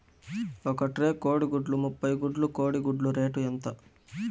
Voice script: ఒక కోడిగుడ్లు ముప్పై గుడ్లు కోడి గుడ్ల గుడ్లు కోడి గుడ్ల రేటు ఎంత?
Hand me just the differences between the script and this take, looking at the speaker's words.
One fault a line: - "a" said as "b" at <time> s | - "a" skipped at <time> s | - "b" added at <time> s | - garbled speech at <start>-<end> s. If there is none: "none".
- "ట్రే" added at 0.9 s
- "గుడ్లు కోడి గుడ్ల" skipped at 3.1 s